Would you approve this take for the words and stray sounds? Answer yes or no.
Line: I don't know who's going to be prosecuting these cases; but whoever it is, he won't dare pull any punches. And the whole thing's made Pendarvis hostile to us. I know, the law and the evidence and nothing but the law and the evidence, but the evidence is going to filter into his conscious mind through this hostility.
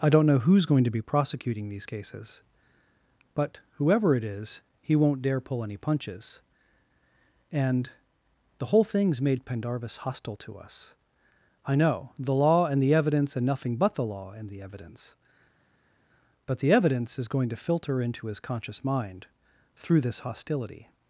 yes